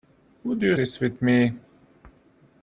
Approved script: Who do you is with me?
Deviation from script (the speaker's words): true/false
false